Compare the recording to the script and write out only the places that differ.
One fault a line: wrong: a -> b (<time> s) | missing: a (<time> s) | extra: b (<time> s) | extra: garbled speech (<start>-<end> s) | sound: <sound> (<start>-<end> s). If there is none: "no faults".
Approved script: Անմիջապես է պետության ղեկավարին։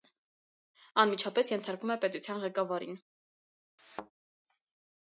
extra: ենթարկվում (1.5 s)
sound: thud (3.8-4.1 s)